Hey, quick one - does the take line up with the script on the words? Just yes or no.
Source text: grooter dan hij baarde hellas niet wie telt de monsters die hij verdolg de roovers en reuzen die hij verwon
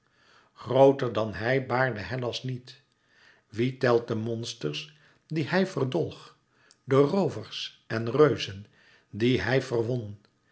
yes